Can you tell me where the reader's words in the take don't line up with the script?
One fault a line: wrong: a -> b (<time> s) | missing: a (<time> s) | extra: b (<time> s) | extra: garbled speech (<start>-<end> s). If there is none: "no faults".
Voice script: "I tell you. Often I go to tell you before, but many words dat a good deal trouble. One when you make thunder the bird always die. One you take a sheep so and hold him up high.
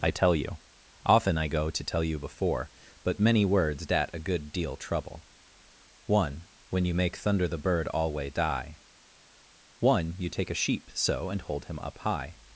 wrong: always -> alway (7.9 s)